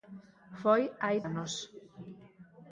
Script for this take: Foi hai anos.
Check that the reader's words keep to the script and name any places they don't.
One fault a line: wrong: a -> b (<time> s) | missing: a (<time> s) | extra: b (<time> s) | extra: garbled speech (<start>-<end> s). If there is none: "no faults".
no faults